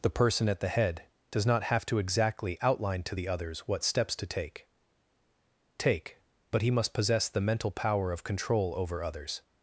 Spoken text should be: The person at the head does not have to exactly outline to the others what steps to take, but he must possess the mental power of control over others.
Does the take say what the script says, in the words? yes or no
no